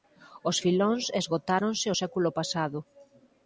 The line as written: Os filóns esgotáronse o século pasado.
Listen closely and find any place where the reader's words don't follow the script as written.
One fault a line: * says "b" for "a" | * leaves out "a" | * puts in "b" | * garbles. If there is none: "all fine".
all fine